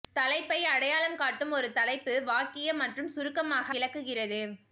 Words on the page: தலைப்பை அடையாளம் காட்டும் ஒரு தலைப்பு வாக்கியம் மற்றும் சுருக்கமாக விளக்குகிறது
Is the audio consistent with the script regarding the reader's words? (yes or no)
yes